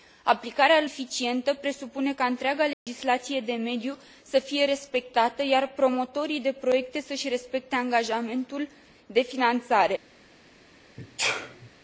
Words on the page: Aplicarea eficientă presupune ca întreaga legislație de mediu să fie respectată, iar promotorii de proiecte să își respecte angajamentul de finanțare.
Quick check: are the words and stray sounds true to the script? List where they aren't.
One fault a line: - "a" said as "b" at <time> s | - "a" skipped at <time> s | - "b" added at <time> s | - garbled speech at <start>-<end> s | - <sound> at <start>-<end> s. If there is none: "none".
- dropout at 2.7-2.9 s
- sneeze at 11.0-11.7 s